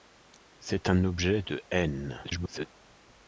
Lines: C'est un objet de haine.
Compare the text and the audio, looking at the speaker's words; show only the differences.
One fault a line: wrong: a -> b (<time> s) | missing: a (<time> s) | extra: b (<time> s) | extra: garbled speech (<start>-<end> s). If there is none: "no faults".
extra: garbled speech (2.2-2.7 s)